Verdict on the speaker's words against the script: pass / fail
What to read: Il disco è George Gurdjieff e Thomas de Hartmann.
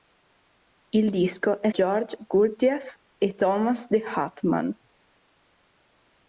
pass